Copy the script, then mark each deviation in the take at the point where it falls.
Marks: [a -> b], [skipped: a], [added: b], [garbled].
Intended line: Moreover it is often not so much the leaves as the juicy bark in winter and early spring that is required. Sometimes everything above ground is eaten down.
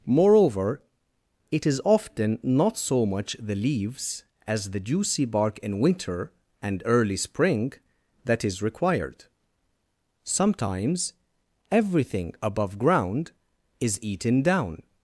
Moreover it is often not so much the leaves as the juicy bark in winter and early spring that is required. Sometimes everything above ground is eaten down.